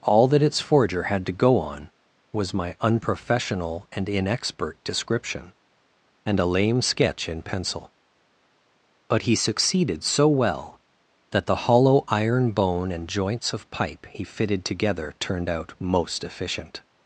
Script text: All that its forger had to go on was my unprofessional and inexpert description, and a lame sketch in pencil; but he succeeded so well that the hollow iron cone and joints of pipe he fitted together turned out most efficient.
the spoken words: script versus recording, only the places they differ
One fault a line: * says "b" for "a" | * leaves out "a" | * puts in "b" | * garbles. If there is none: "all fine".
* says "bone" for "cone"